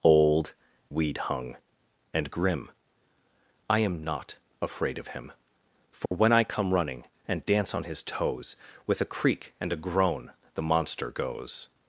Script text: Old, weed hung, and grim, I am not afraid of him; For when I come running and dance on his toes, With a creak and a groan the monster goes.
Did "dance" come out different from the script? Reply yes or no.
no